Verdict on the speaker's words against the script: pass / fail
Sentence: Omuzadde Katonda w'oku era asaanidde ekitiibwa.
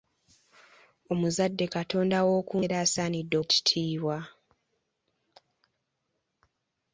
pass